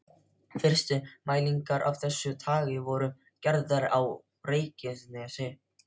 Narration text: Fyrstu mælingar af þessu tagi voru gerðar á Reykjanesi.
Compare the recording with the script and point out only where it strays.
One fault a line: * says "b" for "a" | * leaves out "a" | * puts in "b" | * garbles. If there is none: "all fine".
all fine